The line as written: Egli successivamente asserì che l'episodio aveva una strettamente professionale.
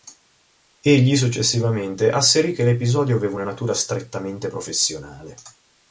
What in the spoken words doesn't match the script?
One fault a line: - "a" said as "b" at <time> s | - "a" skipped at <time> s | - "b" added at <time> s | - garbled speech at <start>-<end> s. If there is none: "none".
- "natura" added at 3.4 s